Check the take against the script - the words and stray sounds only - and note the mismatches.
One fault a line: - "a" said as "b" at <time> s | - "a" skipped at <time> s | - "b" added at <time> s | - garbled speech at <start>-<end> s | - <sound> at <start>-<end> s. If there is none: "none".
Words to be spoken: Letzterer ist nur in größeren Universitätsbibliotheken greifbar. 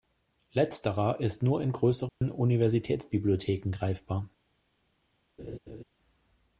- dropout at 2.1-2.2 s
- laugh at 5.4-5.8 s